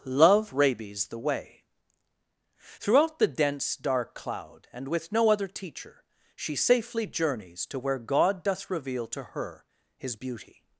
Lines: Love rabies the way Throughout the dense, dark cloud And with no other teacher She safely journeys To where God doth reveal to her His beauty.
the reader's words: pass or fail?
pass